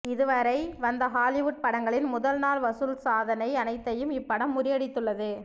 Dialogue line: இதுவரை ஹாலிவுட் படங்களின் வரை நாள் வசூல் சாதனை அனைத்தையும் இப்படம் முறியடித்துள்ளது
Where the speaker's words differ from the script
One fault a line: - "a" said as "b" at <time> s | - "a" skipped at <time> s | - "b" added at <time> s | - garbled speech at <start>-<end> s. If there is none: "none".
- "வந்த" added at 0.8 s
- "வரை" said as "முதல்" at 2.1 s